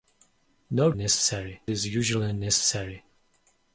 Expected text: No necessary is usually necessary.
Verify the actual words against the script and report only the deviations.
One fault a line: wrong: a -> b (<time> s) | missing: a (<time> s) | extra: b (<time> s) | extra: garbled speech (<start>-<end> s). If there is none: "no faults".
no faults